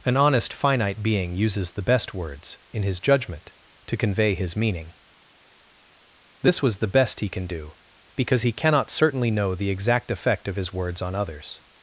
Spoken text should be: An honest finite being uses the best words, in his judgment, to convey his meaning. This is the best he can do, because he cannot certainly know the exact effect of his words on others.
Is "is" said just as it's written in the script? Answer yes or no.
no